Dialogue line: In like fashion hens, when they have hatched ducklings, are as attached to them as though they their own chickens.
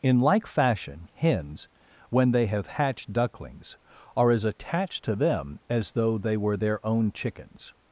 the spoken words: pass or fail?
fail